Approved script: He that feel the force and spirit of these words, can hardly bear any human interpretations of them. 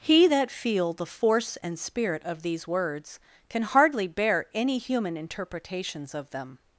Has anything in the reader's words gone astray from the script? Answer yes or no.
no